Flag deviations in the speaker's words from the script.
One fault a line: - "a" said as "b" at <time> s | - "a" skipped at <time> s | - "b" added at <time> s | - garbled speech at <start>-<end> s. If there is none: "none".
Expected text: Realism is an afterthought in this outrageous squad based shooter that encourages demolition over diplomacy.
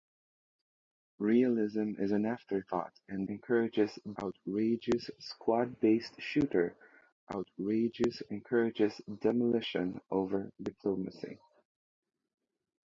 - "this" said as "encourages" at 3.3 s
- "that" said as "outrageous" at 7.3 s